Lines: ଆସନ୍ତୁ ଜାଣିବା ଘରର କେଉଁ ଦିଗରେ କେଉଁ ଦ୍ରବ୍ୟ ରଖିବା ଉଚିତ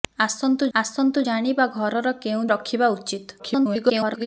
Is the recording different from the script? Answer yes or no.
yes